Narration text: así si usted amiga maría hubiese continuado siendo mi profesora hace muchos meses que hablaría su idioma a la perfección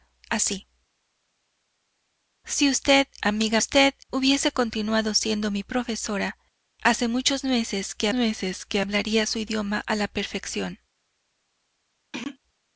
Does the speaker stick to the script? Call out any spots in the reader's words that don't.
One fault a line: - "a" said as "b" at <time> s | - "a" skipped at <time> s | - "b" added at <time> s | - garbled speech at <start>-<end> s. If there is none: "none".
- "maría" said as "usted" at 3.6 s
- "meses que" added at 8.1 s